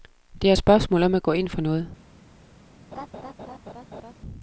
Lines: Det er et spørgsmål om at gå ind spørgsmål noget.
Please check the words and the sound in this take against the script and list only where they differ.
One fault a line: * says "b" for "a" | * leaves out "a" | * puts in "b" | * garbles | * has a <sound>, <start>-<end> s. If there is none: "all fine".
* says "for" for "spørgsmål"
* has a laugh, 2.9-4.1 s